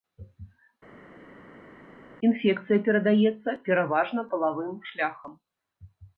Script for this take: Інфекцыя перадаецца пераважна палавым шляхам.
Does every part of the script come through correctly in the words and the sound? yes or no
yes